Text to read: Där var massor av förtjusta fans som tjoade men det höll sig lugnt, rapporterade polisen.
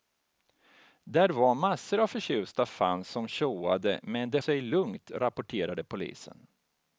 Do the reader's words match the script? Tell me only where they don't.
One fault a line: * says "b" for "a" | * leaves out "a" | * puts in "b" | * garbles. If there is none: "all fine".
* leaves out "höll"